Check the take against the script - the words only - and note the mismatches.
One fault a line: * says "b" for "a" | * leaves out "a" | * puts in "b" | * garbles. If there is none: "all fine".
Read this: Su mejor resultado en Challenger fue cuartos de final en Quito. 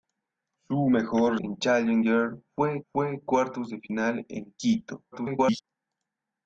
* leaves out "resultado"
* puts in "fue"
* garbles